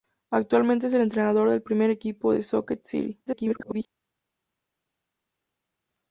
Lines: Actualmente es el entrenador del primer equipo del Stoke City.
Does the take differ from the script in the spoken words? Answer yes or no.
yes